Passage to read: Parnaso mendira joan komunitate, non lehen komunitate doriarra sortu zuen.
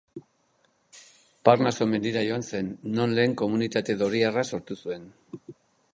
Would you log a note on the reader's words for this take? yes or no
yes